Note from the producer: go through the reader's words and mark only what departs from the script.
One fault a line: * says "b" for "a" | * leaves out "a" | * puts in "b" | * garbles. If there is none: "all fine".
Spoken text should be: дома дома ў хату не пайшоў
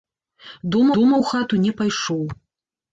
all fine